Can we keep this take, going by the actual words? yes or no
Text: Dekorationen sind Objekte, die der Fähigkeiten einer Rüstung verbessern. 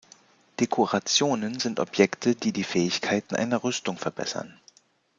no